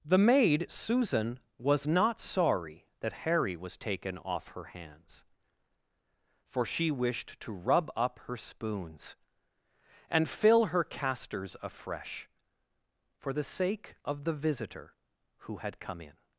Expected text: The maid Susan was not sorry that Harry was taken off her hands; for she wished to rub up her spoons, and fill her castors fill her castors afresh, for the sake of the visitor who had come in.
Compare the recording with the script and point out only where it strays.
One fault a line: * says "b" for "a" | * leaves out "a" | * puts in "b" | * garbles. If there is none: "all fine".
* leaves out "fill her castors"